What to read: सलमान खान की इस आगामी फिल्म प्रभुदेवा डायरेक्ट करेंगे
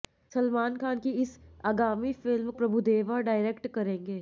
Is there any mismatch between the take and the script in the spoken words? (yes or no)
no